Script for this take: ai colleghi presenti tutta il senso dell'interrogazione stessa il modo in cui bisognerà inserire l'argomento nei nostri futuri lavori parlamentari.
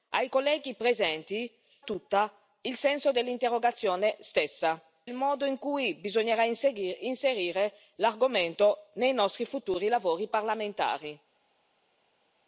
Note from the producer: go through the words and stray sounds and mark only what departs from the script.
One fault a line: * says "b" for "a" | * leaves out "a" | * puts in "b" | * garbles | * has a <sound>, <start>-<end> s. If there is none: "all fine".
all fine